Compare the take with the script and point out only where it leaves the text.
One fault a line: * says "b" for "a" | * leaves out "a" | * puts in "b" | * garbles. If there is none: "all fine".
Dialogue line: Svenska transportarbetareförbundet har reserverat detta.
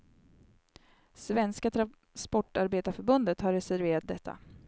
all fine